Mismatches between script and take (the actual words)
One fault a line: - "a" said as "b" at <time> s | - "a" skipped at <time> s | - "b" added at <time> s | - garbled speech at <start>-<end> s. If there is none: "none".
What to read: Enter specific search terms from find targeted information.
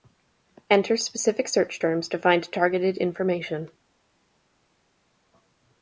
- "from" said as "to" at 2.1 s